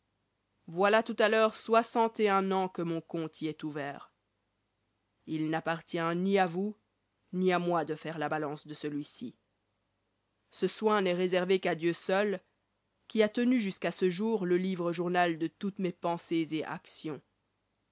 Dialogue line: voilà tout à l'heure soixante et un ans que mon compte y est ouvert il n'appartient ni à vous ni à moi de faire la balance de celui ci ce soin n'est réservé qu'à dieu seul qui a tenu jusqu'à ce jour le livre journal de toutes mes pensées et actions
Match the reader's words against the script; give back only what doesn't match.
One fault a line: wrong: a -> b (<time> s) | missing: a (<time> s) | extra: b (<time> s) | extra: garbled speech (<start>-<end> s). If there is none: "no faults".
no faults